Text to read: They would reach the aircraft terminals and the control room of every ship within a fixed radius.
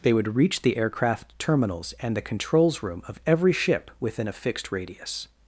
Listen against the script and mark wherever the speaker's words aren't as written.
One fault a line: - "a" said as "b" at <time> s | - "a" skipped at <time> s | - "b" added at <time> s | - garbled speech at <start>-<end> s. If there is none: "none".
- "control" said as "controls" at 2.2 s